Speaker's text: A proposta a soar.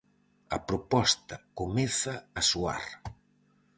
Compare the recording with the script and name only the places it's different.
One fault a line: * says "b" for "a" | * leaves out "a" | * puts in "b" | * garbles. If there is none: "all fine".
* puts in "comeza"